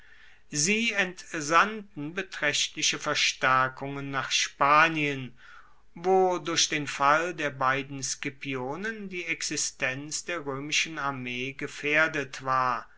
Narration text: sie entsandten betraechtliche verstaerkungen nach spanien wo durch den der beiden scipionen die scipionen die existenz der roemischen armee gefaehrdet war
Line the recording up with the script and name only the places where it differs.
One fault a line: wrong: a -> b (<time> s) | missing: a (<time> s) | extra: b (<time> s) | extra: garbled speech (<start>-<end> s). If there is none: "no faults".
extra: fall (6.9 s)
missing: scipionen die (9.2 s)